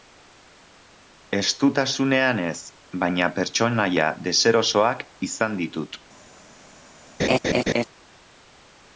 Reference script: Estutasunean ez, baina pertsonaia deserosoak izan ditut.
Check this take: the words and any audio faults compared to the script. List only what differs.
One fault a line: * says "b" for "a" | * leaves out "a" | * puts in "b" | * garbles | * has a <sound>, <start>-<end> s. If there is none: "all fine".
* has a laugh, 7.2-7.8 s